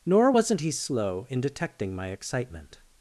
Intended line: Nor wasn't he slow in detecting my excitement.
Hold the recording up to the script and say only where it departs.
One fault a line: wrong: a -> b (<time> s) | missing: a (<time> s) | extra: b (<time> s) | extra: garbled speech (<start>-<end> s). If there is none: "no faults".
no faults